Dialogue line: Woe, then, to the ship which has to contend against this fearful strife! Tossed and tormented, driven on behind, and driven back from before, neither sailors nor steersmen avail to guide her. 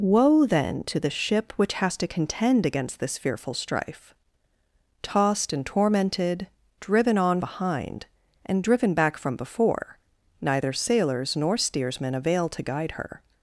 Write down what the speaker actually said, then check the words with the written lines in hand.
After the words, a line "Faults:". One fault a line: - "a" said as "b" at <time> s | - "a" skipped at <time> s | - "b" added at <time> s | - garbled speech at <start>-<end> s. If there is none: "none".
Woe, then, to the ship which has to contend against this fearful strife! Tossed and tormented, driven on behind, and driven back from before, neither sailors nor steersmen avail to guide her.
Faults:
none